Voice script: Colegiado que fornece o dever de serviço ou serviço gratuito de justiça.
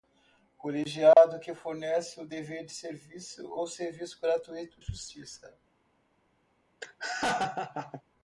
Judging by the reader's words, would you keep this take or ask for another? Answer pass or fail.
fail